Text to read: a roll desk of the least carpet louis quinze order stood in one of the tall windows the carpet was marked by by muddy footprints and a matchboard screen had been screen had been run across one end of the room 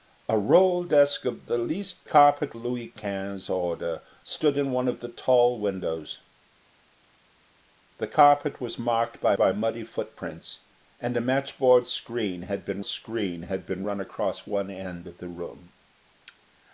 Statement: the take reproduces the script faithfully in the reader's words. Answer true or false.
true